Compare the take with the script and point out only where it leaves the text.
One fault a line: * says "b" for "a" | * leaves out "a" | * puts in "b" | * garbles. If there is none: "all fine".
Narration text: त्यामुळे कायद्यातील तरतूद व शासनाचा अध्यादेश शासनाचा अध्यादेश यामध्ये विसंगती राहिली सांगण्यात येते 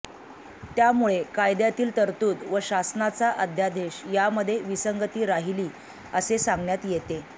* leaves out "शासनाचा अध्यादेश"
* puts in "असे"